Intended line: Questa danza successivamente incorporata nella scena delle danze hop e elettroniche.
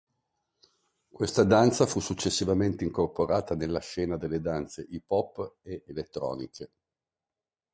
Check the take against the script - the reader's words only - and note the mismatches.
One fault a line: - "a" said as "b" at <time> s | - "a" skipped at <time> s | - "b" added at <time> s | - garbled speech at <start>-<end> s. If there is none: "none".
- "fu" added at 1.9 s
- "hip" added at 4.9 s